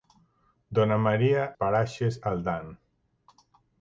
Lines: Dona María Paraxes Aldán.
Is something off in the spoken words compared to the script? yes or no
no